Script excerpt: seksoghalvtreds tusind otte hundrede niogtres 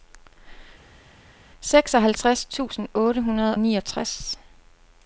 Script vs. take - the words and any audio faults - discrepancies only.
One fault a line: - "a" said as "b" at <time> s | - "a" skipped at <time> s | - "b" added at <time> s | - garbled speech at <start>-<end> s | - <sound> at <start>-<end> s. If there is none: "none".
none